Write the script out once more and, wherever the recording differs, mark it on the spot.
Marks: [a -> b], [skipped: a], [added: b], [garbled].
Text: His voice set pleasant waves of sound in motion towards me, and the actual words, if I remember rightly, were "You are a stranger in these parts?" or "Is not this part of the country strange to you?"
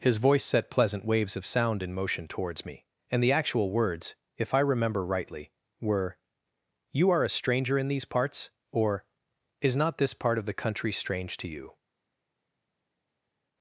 His voice set pleasant waves of sound in motion towards me, and the actual words, if I remember rightly, were "You are a stranger in these parts?" or "Is not this part of the country strange to you?"